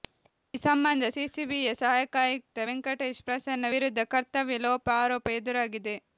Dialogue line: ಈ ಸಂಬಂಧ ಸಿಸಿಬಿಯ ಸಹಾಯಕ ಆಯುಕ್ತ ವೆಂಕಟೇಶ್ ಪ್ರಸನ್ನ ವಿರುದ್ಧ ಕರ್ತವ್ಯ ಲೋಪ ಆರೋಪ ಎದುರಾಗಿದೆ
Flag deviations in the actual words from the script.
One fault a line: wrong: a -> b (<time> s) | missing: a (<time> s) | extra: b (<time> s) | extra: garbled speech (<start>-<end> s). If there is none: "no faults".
no faults